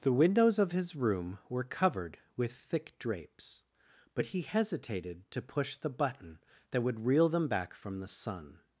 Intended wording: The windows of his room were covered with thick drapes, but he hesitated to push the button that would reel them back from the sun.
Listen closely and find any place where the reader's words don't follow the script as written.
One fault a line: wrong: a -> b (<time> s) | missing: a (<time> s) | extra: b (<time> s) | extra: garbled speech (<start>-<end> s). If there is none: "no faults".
no faults